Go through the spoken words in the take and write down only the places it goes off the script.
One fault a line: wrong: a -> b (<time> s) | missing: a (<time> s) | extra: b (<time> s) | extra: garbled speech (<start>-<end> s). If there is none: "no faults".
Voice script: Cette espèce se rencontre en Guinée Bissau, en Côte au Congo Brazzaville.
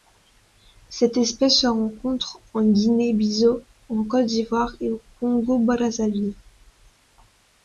extra: d'Ivoire et (4.2 s)